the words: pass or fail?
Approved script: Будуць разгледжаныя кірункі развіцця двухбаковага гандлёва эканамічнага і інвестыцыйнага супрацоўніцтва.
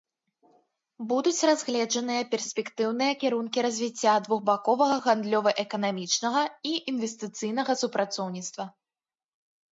fail